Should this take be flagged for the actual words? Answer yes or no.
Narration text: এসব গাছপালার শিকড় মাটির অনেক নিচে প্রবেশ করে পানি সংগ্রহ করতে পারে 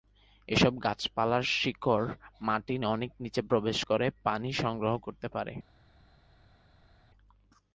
no